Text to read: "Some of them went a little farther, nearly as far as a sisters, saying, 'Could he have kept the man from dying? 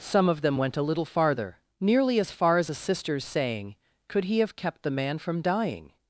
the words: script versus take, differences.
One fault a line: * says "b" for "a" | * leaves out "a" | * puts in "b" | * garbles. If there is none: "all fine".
all fine